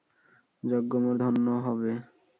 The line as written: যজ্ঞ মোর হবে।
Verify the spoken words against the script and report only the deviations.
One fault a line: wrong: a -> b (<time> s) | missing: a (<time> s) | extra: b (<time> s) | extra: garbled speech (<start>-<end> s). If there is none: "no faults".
extra: ধন্য (1.2 s)